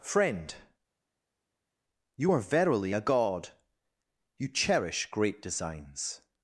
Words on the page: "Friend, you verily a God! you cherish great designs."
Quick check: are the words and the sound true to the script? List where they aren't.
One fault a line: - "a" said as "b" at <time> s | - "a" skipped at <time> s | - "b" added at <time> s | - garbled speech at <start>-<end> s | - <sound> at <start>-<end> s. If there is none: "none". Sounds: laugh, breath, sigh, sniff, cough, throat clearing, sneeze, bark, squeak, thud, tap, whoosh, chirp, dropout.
- "are" added at 2.3 s